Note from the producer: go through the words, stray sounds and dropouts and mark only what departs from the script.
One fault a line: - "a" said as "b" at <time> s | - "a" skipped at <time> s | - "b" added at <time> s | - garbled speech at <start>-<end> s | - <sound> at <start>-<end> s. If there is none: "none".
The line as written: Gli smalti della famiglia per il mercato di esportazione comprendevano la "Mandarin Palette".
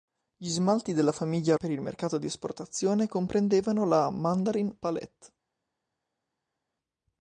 none